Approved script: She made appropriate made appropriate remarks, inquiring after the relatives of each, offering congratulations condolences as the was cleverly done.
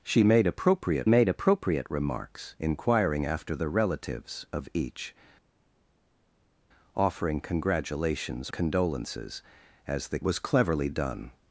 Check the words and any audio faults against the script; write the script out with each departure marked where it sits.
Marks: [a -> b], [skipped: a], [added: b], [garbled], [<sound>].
She made appropriate made appropriate remarks, inquiring after the relatives of each, offering congratulations condolences as the was cleverly done.